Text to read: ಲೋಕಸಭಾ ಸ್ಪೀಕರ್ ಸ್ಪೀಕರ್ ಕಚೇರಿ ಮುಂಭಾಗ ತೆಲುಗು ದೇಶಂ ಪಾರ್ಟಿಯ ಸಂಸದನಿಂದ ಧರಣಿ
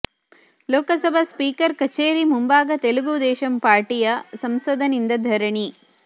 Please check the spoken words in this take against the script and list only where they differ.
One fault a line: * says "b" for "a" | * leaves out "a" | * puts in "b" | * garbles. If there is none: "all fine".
* leaves out "ಸ್ಪೀಕರ್"